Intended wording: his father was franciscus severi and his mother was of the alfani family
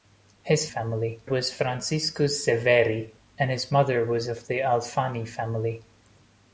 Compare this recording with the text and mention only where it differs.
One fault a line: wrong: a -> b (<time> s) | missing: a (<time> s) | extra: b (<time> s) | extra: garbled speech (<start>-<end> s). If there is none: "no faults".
wrong: father -> family (0.7 s)